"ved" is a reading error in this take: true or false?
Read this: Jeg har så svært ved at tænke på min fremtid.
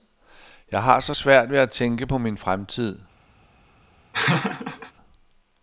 false